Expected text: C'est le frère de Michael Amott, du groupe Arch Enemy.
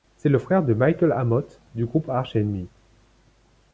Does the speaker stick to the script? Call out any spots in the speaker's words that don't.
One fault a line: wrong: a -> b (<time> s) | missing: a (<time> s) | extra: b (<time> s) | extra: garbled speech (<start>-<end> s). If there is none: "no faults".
no faults